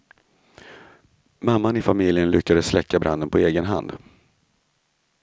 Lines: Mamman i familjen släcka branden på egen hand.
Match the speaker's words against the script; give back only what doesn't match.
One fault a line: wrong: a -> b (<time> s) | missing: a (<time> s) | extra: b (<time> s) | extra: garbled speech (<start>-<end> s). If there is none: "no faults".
extra: lyckades (2.3 s)